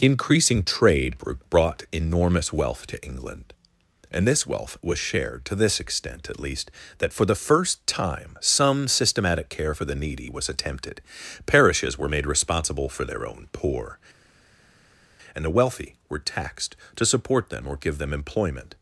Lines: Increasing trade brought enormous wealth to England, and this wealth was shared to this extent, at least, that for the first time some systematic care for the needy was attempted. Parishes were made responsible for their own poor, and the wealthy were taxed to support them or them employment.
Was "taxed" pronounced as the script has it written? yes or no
yes